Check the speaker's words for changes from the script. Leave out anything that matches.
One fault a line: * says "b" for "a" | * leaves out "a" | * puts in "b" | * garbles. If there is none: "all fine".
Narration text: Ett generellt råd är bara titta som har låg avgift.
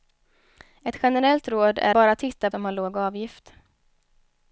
all fine